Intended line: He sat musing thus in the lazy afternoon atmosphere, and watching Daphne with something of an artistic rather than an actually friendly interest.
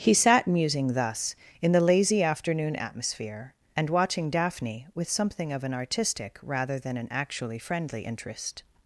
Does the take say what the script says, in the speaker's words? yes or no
yes